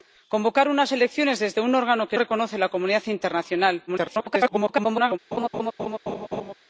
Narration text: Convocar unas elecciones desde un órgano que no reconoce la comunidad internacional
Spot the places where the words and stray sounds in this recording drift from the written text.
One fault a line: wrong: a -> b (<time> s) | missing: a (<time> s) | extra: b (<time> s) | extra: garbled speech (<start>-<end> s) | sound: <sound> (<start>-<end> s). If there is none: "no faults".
missing: no (2.2 s)
extra: garbled speech (3.9-5.2 s)
sound: laugh (5.3-6.5 s)